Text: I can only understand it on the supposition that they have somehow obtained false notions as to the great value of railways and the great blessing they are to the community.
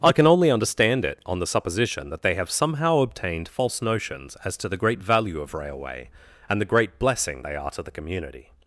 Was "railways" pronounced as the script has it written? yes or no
no